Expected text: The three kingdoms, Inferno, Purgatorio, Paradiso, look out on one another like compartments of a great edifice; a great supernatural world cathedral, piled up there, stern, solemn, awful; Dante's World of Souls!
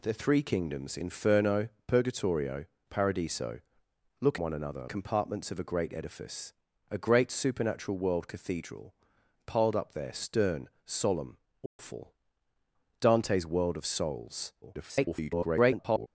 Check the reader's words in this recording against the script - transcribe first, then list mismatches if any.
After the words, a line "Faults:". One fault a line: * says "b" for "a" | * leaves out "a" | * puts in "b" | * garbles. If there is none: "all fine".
The three kingdoms, Inferno, Purgatorio, Paradiso, look one another compartments of a great edifice; a great supernatural world cathedral, piled up there, stern, solemn, awful; Dante's World of Souls! [garbled]
Faults:
* leaves out "out on"
* leaves out "like"
* garbles